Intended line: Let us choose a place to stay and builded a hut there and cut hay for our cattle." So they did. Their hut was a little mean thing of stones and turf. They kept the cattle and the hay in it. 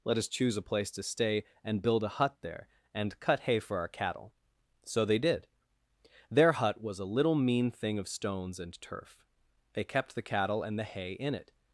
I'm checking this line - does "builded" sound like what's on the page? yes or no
no